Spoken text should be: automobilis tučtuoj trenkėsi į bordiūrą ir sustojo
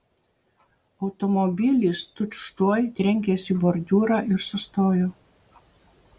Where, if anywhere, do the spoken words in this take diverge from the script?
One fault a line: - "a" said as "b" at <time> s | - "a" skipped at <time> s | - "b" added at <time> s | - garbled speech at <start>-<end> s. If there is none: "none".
none